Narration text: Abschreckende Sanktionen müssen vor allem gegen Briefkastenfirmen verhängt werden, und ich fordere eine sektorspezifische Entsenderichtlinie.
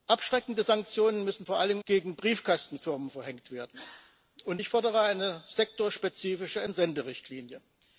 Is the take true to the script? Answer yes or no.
yes